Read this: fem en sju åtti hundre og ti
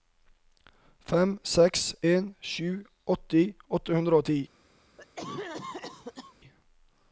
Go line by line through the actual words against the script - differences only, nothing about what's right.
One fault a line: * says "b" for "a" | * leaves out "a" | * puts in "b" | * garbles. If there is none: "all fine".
* puts in "seks"
* puts in "åtte"